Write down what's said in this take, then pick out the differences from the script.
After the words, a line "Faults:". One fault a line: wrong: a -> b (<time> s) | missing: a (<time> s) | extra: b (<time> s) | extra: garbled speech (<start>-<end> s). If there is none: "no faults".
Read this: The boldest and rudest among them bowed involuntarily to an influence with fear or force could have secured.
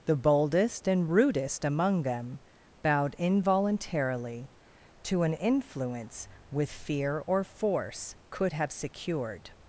The boldest and rudest among them bowed involuntarily to an influence with fear or force could have secured.
Faults:
no faults